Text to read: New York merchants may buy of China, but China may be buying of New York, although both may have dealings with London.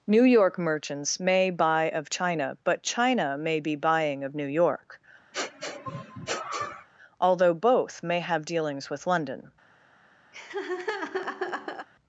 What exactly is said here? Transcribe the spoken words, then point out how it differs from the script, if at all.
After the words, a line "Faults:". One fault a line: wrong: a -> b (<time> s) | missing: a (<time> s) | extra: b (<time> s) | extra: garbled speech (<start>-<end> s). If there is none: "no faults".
New York merchants may buy of China, but China may be buying of New York, although both may have dealings with London.
Faults:
no faults